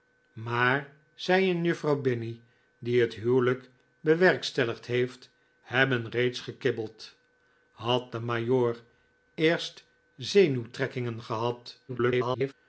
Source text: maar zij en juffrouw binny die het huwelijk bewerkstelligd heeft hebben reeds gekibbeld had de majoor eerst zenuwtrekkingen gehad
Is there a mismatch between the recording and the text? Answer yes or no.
yes